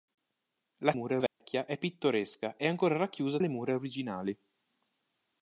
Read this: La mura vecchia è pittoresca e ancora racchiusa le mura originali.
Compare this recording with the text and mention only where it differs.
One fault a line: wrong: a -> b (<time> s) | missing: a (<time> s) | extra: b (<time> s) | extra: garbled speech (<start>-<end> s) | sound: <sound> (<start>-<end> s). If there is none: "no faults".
sound: dropout (1.3-1.4 s)